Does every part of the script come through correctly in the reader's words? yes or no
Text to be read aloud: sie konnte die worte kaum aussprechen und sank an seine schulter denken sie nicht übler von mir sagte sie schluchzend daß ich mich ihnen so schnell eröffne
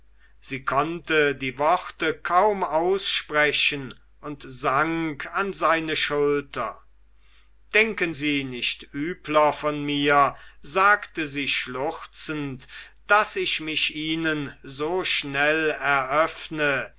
yes